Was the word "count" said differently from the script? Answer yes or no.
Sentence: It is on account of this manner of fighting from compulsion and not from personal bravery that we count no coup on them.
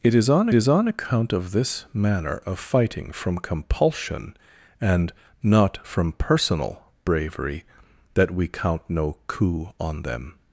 no